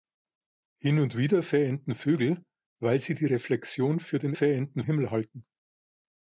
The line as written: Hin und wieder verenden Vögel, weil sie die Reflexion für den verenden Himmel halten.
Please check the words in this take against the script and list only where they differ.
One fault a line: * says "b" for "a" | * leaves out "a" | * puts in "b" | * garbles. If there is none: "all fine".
all fine